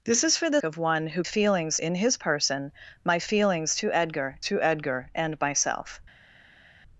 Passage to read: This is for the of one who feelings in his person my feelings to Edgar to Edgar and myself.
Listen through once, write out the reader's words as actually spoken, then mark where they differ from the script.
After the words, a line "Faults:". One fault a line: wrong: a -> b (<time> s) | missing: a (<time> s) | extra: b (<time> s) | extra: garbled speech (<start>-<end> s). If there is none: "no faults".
This is for the of one who feelings in his person my feelings to Edgar to Edgar and myself.
Faults:
no faults